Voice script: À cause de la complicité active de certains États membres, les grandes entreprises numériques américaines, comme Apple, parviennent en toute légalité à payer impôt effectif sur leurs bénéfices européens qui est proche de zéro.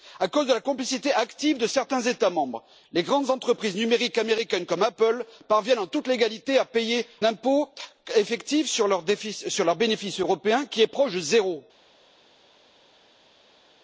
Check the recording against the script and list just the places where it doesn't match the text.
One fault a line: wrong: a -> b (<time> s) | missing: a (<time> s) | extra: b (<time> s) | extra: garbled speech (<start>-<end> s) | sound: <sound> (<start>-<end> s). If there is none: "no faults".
no faults